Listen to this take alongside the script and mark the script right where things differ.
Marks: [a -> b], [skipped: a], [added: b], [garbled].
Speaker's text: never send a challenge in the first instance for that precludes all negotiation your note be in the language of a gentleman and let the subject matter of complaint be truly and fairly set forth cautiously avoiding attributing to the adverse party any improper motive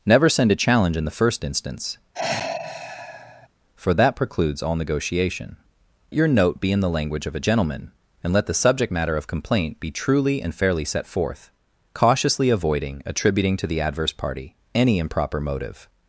never send a challenge in the first instance for that precludes all negotiation your note be in the language of a gentleman and let the subject matter of complaint be truly and fairly set forth cautiously avoiding attributing to the adverse party any improper motive